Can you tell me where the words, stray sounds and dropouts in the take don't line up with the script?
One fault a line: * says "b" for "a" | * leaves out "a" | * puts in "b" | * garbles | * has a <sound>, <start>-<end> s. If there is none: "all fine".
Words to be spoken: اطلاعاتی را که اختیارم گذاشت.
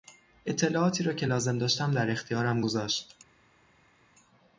* puts in "لازم داشتم در"